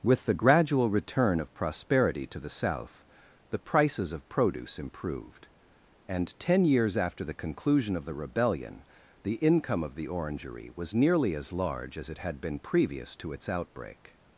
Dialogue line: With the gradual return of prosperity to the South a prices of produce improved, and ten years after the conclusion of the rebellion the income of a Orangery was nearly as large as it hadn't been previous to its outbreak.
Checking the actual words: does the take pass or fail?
fail